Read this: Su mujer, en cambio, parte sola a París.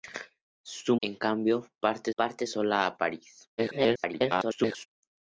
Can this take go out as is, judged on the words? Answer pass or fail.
fail